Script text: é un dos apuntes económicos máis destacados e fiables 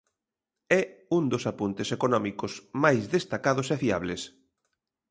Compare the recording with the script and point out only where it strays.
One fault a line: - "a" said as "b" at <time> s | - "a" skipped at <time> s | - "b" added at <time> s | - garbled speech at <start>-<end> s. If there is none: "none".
none